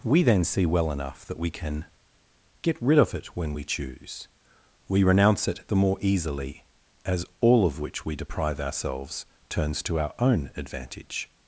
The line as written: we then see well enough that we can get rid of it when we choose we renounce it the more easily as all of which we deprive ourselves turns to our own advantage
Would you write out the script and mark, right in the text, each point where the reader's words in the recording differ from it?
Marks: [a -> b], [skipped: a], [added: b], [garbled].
we then see well enough that we can get rid of it when we choose we renounce it the more easily as all of which we deprive ourselves turns to our own advantage